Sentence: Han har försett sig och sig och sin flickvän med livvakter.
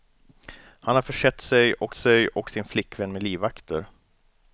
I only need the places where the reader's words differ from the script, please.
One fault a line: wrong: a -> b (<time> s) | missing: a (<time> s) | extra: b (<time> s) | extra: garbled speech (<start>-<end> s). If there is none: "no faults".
no faults